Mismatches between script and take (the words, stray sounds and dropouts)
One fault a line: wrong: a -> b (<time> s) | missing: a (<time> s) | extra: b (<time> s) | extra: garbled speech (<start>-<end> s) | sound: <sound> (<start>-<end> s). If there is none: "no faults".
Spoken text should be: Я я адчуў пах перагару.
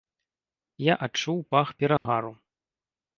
missing: я (0.9 s)
sound: dropout (2.0-2.1 s)